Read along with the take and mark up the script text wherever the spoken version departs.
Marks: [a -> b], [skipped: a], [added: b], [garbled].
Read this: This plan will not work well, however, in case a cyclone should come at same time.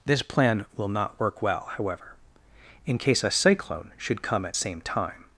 This plan will not work well, however, in case a cyclone should come at same time.